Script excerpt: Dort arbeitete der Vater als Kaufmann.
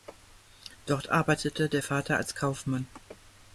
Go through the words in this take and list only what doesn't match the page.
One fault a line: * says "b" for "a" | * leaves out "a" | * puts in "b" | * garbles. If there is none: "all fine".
all fine